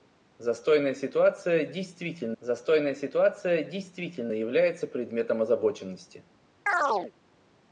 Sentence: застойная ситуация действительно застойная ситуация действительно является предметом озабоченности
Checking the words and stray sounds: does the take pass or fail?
fail